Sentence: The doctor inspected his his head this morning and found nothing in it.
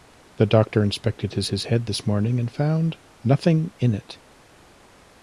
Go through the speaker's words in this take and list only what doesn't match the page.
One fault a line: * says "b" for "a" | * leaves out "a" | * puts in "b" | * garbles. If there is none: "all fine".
all fine